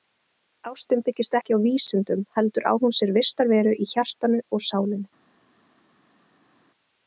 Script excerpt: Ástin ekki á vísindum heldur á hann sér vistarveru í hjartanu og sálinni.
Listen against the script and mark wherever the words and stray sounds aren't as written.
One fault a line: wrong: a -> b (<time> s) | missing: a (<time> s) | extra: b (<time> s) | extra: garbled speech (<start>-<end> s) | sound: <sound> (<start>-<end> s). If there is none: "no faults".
extra: byggist (1.1 s)
wrong: hann -> hún (2.9 s)